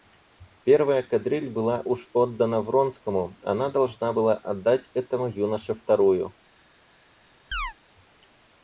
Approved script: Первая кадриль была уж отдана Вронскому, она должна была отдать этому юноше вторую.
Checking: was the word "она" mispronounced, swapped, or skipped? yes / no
no